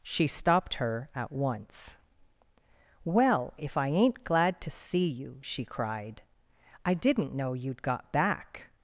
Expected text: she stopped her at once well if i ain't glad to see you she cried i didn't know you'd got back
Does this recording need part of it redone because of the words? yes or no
no